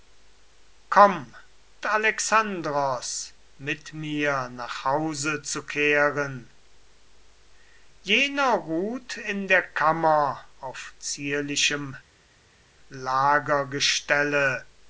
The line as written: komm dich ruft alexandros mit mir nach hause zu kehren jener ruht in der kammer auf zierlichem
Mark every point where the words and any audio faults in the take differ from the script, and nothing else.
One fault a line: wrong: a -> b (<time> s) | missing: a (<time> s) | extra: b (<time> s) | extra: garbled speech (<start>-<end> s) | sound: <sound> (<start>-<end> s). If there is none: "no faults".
missing: dich ruft (1.4 s)